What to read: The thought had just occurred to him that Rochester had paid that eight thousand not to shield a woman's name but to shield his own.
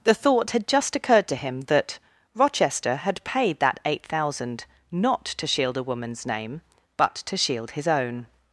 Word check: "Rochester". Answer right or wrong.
right